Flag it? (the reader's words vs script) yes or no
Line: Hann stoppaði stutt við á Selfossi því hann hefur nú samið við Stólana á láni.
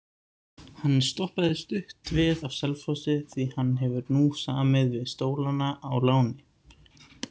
no